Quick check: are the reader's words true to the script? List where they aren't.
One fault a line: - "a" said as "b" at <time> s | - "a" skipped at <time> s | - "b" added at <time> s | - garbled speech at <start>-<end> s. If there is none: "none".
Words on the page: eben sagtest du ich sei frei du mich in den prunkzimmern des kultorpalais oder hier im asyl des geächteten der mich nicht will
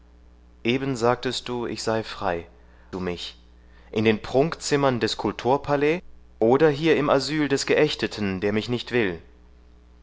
none